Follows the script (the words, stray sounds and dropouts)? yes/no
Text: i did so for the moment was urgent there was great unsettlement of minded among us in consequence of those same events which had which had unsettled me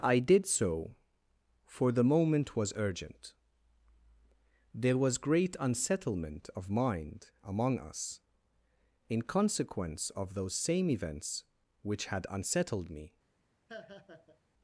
no